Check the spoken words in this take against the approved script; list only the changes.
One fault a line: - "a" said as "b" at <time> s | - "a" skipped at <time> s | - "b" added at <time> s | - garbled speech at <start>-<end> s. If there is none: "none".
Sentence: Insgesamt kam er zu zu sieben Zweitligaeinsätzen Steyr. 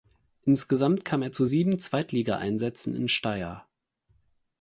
- "zu" skipped at 1.4 s
- "in" added at 2.9 s